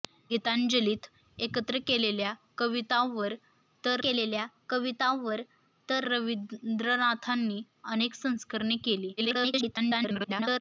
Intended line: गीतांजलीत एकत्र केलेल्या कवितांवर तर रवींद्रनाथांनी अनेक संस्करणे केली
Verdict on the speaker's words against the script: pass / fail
fail